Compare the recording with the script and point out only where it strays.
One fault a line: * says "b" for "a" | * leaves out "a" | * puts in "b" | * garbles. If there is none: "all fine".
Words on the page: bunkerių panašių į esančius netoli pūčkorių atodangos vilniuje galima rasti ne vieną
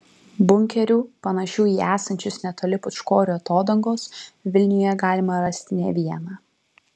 all fine